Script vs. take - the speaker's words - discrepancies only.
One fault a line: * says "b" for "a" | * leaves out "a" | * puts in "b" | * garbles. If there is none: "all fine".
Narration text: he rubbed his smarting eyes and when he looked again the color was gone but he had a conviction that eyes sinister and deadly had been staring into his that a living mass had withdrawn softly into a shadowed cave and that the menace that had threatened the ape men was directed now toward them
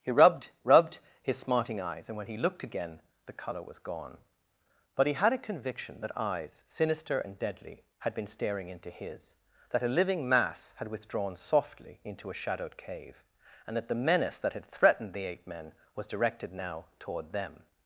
* puts in "rubbed"